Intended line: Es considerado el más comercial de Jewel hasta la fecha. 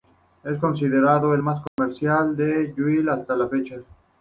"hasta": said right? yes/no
yes